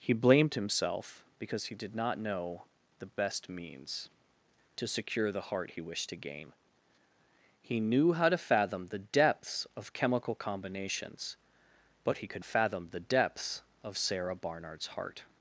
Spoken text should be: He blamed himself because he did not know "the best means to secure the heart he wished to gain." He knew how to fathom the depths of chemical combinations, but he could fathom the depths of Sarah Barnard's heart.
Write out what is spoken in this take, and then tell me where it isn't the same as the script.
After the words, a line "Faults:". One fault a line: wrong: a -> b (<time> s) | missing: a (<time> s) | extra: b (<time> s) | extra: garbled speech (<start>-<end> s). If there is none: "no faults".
He blamed himself because he did not know "the best means to secure the heart he wished to gain." He knew how to fathom the depths of chemical combinations, but he could fathom the depths of Sarah Barnard's heart.
Faults:
no faults